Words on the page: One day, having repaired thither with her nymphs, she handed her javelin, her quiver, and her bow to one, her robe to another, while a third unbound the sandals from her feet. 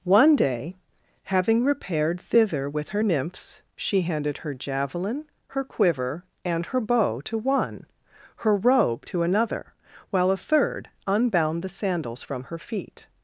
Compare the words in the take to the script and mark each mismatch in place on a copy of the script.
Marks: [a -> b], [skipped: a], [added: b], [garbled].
One day, having repaired thither with her nymphs, she handed her javelin, her quiver, and her bow to one, her robe to another, while a third unbound the sandals from her feet.